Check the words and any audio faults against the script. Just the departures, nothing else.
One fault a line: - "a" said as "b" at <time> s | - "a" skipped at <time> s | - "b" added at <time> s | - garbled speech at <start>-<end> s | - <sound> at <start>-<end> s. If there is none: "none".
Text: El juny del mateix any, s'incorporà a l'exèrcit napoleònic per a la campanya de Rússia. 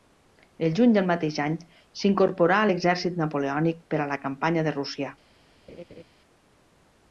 - laugh at 5.7-6.0 s